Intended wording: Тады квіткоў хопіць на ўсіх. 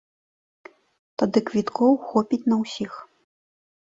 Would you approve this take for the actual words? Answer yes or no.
yes